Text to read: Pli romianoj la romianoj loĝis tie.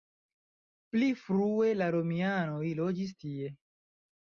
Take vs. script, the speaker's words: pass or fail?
fail